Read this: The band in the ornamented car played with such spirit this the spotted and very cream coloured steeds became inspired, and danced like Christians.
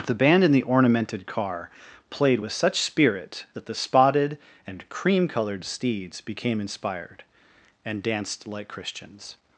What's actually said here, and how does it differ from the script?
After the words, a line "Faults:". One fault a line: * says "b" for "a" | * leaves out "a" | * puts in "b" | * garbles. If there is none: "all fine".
The band in the ornamented car played with such spirit that the spotted and cream coloured steeds became inspired, and danced like Christians.
Faults:
* says "that" for "this"
* leaves out "very"